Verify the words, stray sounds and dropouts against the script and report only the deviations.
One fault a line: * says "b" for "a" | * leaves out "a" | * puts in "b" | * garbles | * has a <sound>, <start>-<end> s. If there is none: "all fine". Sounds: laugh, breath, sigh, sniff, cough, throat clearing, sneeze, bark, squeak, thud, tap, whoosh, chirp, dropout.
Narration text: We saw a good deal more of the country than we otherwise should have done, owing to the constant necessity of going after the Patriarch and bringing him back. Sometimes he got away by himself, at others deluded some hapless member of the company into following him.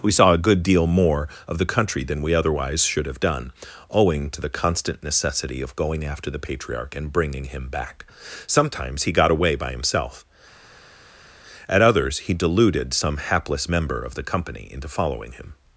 * puts in "he"